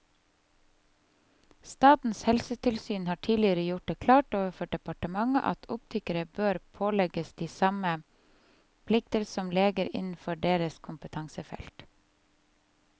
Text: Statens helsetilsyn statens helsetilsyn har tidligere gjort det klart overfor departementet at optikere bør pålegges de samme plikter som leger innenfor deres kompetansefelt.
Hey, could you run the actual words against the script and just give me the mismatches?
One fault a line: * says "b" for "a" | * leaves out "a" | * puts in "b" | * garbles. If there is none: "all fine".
* leaves out "statens helsetilsyn"